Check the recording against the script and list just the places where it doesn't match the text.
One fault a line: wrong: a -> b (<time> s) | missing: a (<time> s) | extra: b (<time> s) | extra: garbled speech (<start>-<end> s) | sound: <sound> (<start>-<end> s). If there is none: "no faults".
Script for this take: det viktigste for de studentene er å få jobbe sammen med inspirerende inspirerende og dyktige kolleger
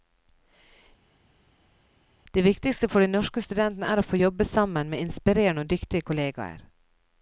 extra: norske (3.1 s)
missing: inspirerende (5.7 s)